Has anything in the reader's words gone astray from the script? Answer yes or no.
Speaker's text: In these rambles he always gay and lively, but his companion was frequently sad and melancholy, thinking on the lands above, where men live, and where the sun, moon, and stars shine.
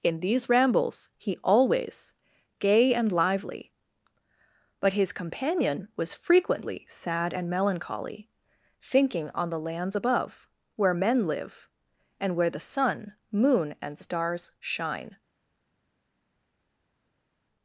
no